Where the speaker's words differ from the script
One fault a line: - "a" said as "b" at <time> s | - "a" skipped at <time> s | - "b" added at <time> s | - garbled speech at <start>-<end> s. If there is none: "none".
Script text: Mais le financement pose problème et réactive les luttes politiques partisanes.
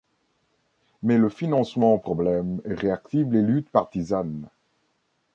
- "pose" skipped at 2.0 s
- "politiques" skipped at 3.7 s